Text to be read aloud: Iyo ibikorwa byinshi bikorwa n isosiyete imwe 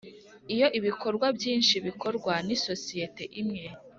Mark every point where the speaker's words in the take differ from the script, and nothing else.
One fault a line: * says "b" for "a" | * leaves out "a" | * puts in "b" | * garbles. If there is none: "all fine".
all fine